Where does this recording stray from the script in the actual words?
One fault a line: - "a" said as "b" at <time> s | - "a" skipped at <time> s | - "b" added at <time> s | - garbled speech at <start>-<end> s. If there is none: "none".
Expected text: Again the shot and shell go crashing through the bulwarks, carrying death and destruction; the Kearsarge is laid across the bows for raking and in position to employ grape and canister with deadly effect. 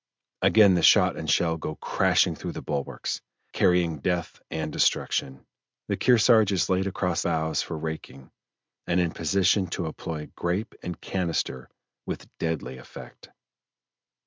- "the" skipped at 7.2 s